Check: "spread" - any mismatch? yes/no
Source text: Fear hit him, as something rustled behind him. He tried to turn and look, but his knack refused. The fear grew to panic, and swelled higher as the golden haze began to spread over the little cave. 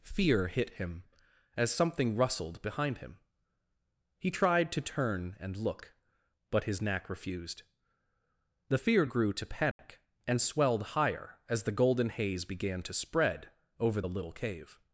no